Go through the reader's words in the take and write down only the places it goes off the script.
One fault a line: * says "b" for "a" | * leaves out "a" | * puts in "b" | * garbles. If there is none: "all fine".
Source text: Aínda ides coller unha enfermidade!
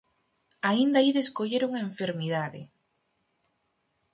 all fine